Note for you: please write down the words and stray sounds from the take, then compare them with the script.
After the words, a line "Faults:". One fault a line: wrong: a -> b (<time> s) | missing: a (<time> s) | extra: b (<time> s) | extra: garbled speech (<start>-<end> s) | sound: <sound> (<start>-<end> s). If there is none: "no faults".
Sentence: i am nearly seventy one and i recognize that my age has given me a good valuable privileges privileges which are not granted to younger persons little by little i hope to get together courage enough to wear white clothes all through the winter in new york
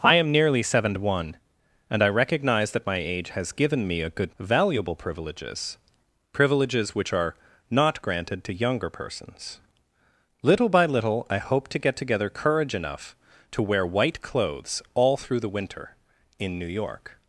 i am nearly seventy one and i recognize that my age has given me a good valuable privileges privileges which are not granted to younger persons little by little i hope to get together courage enough to wear white clothes all through the winter in new york
Faults:
no faults